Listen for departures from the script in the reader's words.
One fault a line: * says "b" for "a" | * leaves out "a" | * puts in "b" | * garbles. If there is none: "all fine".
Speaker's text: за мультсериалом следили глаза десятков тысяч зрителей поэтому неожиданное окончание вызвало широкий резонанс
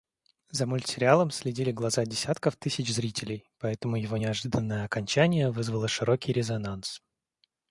* puts in "его"